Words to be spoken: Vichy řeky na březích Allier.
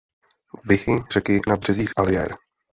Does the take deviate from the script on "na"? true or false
false